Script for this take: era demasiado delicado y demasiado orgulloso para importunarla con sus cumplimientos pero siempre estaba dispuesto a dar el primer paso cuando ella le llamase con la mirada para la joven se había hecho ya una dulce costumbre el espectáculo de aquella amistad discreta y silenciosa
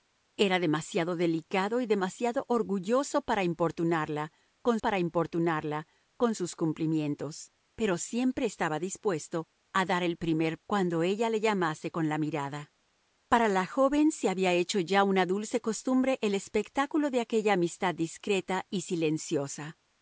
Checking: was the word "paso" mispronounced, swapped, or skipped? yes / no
yes